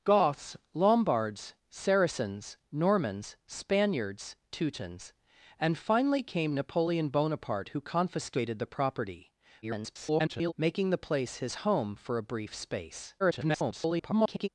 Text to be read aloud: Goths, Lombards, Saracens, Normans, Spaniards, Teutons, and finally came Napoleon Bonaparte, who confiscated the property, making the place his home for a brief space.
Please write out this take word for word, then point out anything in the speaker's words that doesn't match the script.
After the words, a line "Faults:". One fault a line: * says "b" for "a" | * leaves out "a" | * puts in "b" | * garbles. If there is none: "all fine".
Goths, Lombards, Saracens, Normans, Spaniards, Teutons, and finally came Napoleon Bonaparte, who confiscated the property, [garbled] making the place his home for a brief space. [garbled]
Faults:
* garbles
* garbles